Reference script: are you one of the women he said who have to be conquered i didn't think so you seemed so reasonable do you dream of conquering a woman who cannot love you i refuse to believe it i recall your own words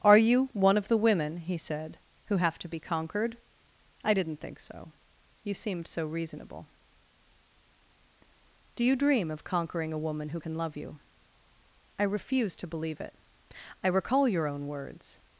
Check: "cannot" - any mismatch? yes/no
yes